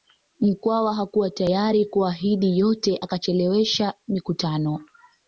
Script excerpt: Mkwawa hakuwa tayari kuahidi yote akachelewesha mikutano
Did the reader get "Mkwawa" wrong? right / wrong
right